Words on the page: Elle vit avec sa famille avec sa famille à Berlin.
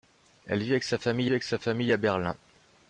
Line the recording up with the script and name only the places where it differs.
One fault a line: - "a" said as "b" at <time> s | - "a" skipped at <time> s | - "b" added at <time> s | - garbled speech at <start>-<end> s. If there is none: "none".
none